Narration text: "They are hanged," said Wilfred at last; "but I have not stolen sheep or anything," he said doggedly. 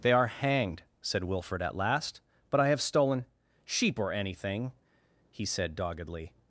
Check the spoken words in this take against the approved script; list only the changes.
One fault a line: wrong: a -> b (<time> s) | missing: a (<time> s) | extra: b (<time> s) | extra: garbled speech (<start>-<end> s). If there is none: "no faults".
missing: not (2.8 s)